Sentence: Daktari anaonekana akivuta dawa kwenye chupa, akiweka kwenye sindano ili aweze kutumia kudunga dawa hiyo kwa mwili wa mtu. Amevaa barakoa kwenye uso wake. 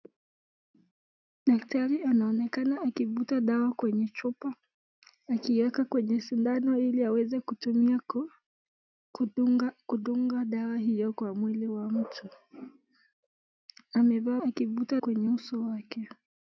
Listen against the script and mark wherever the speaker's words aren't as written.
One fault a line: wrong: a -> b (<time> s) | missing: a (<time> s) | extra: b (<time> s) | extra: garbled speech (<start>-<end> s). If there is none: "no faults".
wrong: barakoa -> akivuta (14.5 s)